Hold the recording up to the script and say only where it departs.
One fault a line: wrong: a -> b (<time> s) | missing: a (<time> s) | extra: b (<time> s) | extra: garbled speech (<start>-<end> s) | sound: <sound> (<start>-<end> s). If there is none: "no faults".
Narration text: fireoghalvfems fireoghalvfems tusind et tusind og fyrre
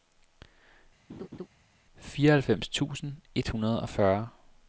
sound: laugh (1.1-1.5 s)
missing: fireoghalvfems (2.7 s)
wrong: tusind -> hundrede (3.5 s)